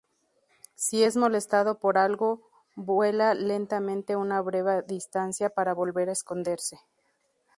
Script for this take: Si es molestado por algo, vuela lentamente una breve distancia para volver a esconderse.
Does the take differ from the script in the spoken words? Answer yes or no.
no